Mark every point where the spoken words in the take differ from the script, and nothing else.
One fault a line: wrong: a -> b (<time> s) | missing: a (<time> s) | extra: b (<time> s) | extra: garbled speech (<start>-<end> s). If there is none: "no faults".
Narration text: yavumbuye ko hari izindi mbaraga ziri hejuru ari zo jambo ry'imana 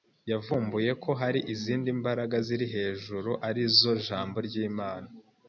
no faults